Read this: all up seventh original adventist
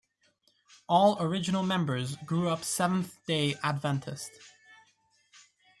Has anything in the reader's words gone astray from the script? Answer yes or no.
yes